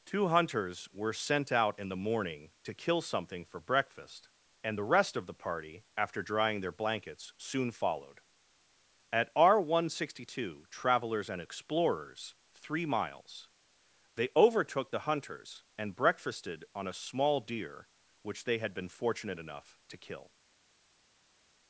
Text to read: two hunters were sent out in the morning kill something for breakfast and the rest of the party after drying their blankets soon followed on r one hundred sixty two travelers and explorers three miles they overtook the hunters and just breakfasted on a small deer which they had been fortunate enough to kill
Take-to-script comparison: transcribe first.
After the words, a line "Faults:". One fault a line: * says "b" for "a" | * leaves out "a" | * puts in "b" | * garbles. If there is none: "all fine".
two hunters were sent out in the morning to kill something for breakfast and the rest of the party after drying their blankets soon followed at r one hundred sixty two travelers and explorers three miles they overtook the hunters and breakfasted on a small deer which they had been fortunate enough to kill
Faults:
* puts in "to"
* says "at" for "on"
* leaves out "just"